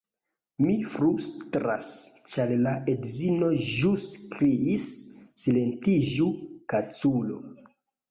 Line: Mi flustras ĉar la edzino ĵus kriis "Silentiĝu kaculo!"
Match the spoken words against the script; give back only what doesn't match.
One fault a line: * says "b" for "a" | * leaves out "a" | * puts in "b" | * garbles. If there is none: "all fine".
all fine